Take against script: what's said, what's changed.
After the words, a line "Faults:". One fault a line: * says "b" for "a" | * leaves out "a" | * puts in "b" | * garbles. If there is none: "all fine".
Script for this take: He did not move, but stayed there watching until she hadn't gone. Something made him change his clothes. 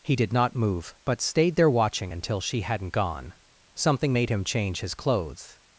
He did not move, but stayed there watching until she hadn't gone. Something made him change his clothes.
Faults:
all fine